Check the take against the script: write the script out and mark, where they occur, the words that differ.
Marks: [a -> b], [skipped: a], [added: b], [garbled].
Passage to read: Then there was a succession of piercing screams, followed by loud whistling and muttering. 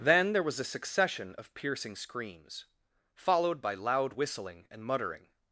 Then there was a succession of piercing screams, followed by loud whistling and muttering.